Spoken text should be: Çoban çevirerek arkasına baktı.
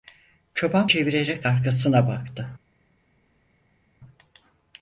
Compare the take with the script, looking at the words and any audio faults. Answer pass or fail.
pass